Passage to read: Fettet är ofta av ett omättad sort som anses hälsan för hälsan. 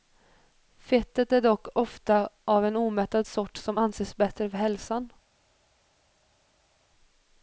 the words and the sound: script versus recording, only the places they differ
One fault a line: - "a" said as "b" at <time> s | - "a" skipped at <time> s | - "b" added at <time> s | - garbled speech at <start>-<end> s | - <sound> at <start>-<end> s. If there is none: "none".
- "dock" added at 1.4 s
- "ett" said as "en" at 2.7 s
- "hälsan" said as "bättre" at 4.2 s